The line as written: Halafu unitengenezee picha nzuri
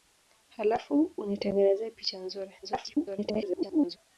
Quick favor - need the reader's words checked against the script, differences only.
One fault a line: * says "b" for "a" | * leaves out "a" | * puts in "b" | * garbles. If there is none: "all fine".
* garbles